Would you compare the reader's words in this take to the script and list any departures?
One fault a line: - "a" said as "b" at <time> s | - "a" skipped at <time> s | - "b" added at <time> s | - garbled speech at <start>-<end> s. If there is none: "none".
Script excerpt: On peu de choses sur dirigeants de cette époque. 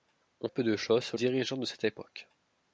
none